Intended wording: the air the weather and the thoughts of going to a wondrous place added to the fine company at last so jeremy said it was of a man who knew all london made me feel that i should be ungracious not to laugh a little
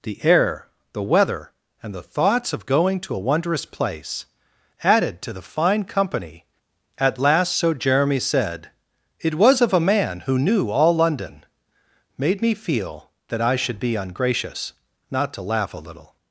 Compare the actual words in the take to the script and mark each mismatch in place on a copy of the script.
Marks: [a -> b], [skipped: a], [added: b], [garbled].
the air the weather and the thoughts of going to a wondrous place added to the fine company at last so jeremy said it was of a man who knew all london made me feel that i should be ungracious not to laugh a little